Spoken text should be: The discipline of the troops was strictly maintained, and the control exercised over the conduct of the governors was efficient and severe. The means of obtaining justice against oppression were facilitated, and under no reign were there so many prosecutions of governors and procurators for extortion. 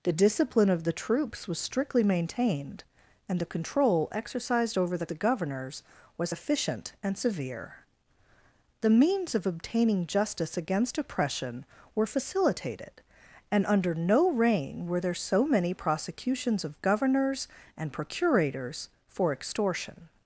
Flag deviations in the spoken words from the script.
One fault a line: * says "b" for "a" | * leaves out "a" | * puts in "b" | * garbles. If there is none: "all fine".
* leaves out "conduct of"